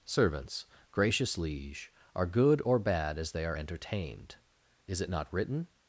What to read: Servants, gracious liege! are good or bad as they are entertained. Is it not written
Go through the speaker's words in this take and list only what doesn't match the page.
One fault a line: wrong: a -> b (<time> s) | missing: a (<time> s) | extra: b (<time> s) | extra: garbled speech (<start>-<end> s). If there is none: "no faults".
no faults